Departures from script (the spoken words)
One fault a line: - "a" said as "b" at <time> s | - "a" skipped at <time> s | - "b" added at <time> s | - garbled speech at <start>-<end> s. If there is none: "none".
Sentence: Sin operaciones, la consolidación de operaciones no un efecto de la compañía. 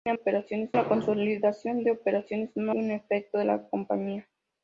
none